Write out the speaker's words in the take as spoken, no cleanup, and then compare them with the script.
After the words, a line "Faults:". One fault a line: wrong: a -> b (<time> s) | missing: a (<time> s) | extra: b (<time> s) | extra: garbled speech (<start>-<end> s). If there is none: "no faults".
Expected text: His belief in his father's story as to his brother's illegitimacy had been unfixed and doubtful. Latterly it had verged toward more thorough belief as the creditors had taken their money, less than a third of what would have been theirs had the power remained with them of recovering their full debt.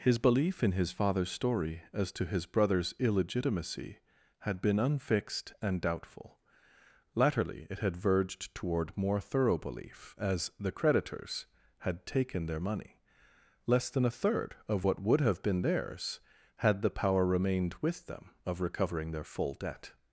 His belief in his father's story as to his brother's illegitimacy had been unfixed and doubtful. Latterly it had verged toward more thorough belief as the creditors had taken their money, less than a third of what would have been theirs had the power remained with them of recovering their full debt.
Faults:
no faults